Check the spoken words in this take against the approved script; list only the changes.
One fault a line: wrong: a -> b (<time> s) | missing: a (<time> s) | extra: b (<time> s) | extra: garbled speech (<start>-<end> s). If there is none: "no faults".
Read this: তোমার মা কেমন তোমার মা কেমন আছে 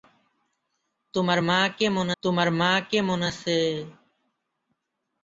no faults